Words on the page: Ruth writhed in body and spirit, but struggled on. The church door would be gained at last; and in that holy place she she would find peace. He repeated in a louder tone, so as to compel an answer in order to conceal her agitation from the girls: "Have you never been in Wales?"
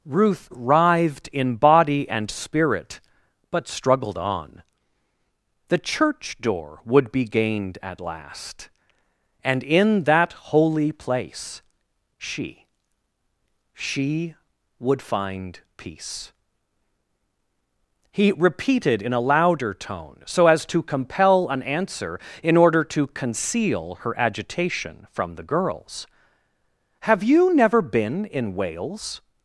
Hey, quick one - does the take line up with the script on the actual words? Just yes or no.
yes